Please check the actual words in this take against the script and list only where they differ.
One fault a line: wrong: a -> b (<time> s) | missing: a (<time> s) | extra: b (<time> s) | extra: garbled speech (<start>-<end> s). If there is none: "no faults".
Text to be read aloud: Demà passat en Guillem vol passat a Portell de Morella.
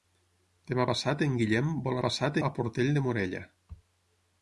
no faults